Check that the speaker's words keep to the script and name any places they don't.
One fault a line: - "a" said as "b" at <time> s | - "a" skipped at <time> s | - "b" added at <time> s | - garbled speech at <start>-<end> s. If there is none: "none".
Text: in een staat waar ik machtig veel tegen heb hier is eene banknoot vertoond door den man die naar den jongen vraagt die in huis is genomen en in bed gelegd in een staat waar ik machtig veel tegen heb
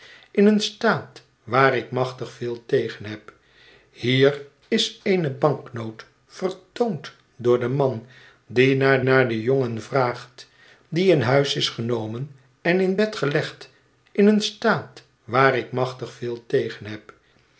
- "naar" added at 9.0 s